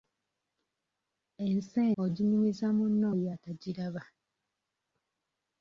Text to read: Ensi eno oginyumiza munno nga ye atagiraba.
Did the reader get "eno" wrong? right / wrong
wrong